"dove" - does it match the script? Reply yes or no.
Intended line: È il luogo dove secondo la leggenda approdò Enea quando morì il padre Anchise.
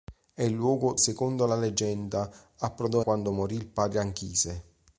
no